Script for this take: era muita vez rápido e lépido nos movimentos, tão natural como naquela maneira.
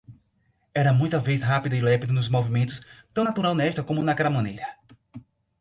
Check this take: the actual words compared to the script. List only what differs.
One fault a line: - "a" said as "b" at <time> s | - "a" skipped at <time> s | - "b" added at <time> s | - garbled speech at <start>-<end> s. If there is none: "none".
- "nesta" added at 3.5 s